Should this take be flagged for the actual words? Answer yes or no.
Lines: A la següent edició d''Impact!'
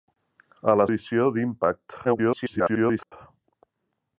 yes